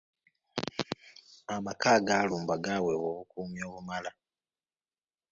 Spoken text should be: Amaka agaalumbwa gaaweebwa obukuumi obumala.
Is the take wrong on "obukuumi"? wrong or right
right